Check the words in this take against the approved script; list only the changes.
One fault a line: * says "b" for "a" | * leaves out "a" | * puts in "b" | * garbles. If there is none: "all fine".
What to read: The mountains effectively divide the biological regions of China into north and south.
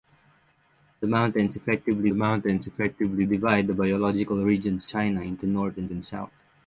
* puts in "mountains effectively"
* leaves out "of"
* puts in "and"